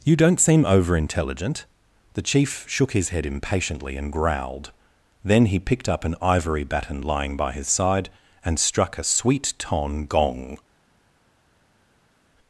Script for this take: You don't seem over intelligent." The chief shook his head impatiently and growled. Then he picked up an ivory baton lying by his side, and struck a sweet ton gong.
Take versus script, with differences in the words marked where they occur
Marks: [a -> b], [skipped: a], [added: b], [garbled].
You don't seem over intelligent." The chief shook his head impatiently and growled. Then he picked up an ivory baton lying by his side, and struck a sweet ton gong.